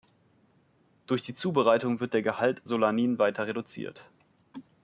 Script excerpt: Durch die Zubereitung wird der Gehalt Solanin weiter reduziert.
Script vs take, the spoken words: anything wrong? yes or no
no